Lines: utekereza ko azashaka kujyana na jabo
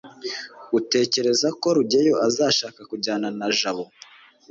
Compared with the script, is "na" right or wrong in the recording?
right